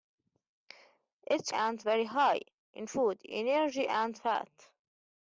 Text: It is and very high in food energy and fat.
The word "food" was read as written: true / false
true